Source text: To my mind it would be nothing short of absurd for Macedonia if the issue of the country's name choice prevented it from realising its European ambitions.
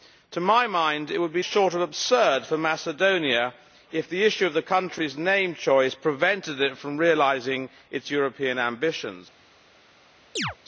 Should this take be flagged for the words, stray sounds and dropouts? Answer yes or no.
yes